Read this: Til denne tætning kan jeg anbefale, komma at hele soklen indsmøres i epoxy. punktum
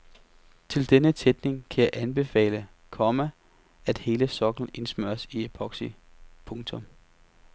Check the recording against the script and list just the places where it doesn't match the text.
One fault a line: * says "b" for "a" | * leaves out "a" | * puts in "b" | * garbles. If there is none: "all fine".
all fine